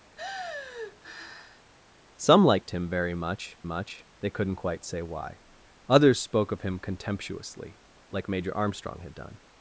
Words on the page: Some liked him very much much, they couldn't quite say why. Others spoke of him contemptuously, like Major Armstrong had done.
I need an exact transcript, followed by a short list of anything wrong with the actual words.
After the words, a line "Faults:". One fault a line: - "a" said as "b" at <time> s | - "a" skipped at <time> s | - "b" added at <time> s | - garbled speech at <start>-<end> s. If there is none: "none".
Some liked him very much much, they couldn't quite say why. Others spoke of him contemptuously, like Major Armstrong had done.
Faults:
none